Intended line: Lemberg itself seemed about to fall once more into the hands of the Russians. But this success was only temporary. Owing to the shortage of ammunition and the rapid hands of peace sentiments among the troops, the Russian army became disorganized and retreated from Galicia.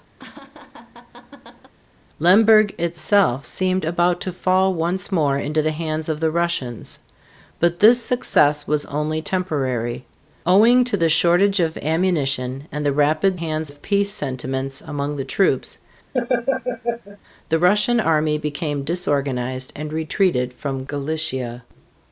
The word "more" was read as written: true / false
true